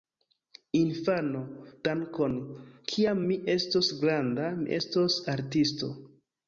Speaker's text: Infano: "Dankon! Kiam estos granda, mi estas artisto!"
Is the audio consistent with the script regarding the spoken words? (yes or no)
no